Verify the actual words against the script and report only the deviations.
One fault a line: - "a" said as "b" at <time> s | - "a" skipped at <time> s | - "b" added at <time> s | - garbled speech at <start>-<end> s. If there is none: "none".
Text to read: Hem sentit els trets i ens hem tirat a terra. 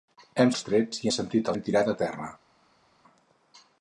- "sentit" skipped at 0.5 s
- "ens" said as "sentit" at 1.2 s